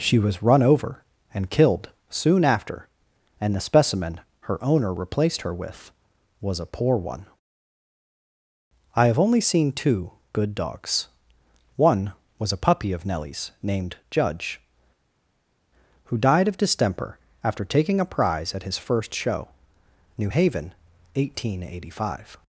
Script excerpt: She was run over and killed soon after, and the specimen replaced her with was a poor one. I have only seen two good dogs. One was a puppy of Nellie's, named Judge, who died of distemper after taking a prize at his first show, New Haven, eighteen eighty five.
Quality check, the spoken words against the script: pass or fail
fail